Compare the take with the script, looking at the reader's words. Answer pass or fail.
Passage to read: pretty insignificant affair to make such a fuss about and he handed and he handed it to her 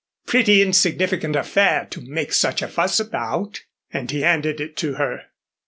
fail